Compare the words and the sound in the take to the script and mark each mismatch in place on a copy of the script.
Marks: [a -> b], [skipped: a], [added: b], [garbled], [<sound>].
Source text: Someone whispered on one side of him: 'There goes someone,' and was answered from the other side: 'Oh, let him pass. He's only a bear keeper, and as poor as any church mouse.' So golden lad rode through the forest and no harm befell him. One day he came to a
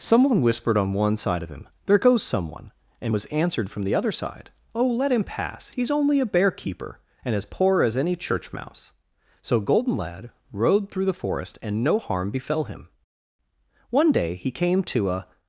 Someone whispered on one side of him: 'There goes someone,' and was answered from the other side: 'Oh, let him pass. He's only a bear keeper, and as poor as any church mouse.' So golden lad rode through the forest and no harm befell him. One day he came to a